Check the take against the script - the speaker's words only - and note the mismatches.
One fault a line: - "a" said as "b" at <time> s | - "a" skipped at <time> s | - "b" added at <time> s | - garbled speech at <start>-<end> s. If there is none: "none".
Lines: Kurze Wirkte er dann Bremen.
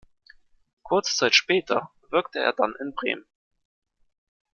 - "Zeit später" added at 1.1 s
- "in" added at 2.8 s